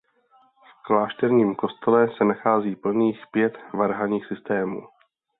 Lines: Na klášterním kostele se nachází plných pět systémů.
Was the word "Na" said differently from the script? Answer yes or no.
yes